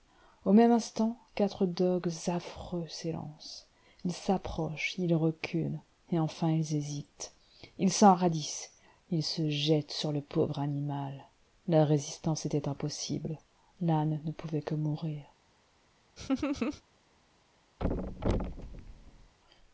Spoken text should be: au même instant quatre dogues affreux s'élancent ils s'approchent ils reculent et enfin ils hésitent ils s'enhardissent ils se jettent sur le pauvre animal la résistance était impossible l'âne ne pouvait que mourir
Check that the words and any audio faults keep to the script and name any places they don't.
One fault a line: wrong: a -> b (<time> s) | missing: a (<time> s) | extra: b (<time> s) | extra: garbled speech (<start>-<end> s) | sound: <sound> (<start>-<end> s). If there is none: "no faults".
sound: laugh (16.2-16.8 s)
sound: thud (17.8-19.3 s)